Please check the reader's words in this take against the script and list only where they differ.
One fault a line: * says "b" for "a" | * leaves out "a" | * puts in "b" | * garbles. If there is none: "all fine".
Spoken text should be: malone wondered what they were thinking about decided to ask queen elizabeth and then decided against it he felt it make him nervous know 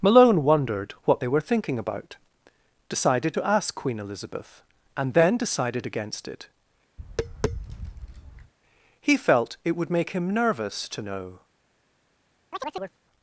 * puts in "would"
* puts in "to"